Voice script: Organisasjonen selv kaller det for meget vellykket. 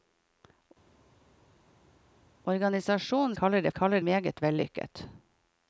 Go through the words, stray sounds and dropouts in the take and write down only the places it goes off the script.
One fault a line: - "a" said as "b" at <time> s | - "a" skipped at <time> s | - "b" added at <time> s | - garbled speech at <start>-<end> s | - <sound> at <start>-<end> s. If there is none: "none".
- "selv" skipped at 3.3 s
- "for" said as "kaller" at 3.7 s